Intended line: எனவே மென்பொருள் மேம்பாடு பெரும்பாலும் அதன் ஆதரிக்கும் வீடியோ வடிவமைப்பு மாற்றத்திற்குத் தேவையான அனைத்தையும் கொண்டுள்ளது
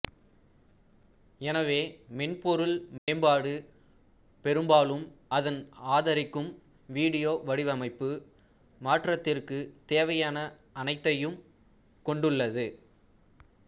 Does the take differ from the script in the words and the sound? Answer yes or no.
yes